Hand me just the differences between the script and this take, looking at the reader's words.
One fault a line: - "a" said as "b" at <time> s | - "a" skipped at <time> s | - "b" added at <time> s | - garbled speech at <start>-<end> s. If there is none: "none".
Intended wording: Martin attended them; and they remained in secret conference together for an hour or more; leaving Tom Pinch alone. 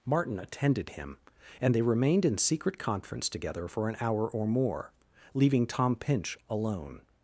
- "them" said as "him" at 0.9 s